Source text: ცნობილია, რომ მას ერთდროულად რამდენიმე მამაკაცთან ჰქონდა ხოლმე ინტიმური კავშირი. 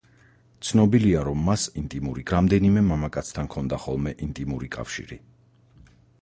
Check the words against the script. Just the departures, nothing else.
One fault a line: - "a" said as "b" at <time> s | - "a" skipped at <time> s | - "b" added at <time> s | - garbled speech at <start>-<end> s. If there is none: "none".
- "ერთდროულად" said as "ინტიმური" at 1.8 s